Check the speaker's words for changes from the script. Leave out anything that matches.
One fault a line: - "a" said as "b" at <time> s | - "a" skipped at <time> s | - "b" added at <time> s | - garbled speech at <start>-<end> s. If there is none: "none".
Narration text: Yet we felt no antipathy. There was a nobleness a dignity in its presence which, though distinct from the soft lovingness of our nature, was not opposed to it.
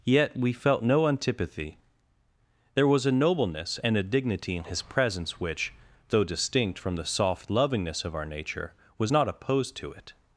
- "and" added at 3.8 s
- "its" said as "his" at 4.6 s